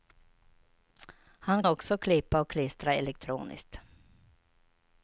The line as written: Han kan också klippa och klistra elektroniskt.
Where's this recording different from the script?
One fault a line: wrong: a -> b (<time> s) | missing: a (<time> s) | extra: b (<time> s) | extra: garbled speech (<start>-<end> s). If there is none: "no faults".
missing: kan (1.6 s)